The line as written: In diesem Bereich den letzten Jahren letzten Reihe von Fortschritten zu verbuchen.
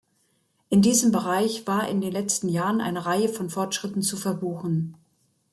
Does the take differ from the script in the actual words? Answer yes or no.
yes